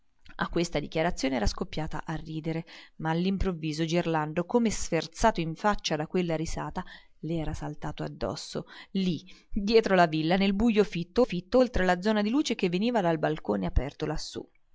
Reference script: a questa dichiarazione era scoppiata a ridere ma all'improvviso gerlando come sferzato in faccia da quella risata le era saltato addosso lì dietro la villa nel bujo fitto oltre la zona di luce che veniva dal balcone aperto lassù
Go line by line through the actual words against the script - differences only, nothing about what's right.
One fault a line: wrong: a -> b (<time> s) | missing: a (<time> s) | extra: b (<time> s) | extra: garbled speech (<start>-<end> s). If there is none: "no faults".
extra: fitto (11.2 s)